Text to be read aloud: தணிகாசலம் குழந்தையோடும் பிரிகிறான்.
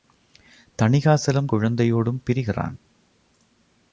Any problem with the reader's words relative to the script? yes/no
no